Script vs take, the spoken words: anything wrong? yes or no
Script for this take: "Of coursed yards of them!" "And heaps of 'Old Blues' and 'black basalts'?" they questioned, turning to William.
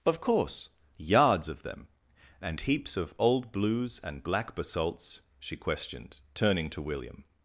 yes